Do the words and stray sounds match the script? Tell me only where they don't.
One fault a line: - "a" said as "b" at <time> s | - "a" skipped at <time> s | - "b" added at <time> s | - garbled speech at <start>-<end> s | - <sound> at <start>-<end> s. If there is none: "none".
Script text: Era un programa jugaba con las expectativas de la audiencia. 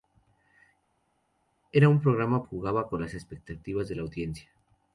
none